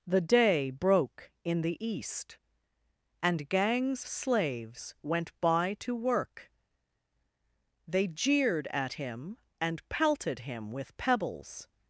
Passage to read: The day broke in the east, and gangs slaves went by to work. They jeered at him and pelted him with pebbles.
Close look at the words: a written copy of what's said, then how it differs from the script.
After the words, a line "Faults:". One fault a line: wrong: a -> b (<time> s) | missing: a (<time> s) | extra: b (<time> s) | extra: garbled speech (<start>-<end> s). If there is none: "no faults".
The day broke in the east, and gangs slaves went by to work. They jeered at him and pelted him with pebbles.
Faults:
no faults